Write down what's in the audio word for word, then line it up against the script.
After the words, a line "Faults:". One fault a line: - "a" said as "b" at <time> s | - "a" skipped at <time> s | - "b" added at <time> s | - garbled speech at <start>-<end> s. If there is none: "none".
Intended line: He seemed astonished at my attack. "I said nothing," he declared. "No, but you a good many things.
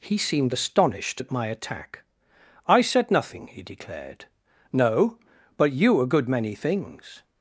He seemed astonished at my attack. "I said nothing," he declared. "No, but you a good many things.
Faults:
none